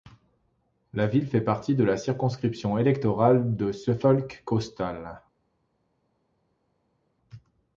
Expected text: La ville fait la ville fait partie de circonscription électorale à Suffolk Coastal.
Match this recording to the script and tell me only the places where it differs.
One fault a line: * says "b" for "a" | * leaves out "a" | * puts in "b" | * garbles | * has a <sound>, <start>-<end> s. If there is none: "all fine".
* leaves out "la ville fait"
* puts in "la"
* says "de" for "à"